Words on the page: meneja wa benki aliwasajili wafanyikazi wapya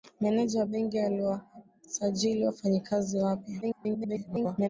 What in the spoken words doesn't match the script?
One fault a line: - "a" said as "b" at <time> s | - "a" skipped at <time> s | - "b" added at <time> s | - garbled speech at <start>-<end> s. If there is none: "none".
- garbled speech at 3.6-4.7 s